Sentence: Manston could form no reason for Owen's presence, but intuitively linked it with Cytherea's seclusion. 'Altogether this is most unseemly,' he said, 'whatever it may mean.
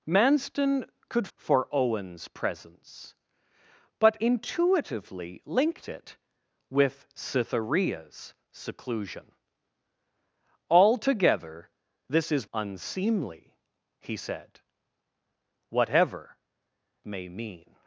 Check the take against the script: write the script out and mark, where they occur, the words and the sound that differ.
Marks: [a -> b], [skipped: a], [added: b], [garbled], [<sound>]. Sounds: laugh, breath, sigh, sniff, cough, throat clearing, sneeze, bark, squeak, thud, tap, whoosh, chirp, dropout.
Manston could [skipped: form no reason] for Owen's presence, but intuitively linked it with Cytherea's seclusion. 'Altogether this is [skipped: most] unseemly,' he said, 'whatever [skipped: it] may mean.